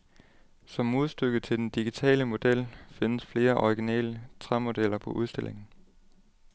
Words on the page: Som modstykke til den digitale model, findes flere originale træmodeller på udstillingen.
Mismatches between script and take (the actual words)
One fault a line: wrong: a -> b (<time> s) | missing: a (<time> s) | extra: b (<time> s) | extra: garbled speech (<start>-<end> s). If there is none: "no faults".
no faults